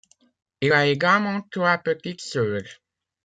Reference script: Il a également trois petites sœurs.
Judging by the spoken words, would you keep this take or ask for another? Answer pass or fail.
pass